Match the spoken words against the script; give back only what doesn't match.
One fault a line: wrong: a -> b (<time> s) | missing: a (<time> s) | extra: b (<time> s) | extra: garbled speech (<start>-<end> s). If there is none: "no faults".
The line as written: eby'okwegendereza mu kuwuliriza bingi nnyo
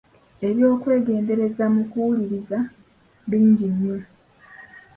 no faults